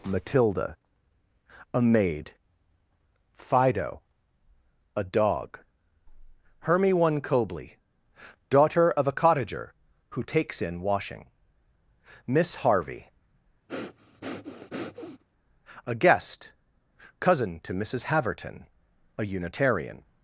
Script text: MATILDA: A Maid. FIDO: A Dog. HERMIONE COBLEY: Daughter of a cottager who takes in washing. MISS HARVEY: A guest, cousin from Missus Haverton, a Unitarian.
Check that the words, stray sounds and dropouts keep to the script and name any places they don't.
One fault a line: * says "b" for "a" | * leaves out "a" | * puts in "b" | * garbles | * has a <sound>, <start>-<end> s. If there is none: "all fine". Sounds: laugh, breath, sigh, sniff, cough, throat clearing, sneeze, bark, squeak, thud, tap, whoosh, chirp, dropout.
* has a breath, 13.7-15.2 s
* says "to" for "from"